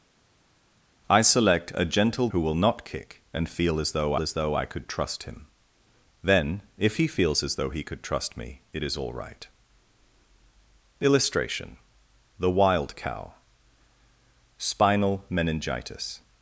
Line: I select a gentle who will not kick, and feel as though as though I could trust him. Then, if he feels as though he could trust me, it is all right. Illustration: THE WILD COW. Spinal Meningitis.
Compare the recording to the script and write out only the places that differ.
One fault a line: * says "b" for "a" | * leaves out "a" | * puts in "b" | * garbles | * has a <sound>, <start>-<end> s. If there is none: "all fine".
all fine